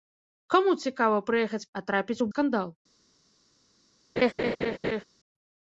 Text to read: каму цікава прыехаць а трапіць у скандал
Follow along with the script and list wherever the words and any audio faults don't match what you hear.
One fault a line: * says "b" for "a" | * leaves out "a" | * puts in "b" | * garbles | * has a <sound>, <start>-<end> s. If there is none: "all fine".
* has a laugh, 4.2-5.0 s